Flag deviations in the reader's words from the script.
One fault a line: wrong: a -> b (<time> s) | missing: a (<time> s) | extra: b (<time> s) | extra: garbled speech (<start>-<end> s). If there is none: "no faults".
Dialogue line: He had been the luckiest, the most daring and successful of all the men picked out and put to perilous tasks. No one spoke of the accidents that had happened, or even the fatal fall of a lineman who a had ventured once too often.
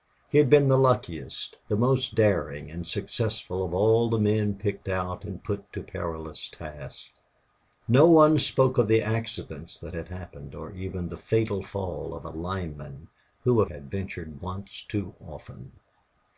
no faults